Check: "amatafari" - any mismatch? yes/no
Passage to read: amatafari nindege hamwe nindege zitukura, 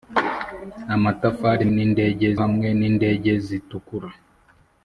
no